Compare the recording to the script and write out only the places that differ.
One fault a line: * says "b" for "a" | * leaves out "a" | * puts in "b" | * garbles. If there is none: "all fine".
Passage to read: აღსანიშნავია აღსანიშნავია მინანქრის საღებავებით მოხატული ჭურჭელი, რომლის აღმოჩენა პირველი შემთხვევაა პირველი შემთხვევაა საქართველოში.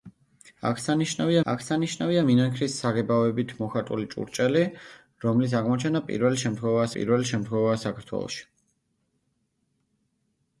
all fine